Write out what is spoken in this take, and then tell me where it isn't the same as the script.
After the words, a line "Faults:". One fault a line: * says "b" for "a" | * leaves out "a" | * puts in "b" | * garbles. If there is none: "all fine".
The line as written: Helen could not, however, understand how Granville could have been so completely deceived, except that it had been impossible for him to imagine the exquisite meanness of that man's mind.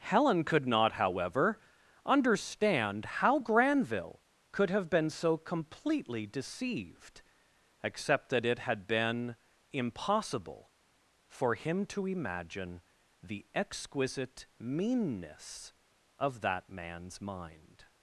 Helen could not, however, understand how Granville could have been so completely deceived, except that it had been impossible for him to imagine the exquisite meanness of that man's mind.
Faults:
all fine